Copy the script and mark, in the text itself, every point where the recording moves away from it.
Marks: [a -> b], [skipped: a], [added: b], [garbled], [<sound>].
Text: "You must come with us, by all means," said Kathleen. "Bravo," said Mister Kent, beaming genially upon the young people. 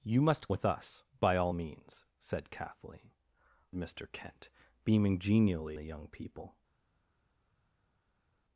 "You must [skipped: come] with us, by all means," said Kathleen. [skipped: "Bravo," said] Mister Kent, beaming genially [skipped: upon] the young people.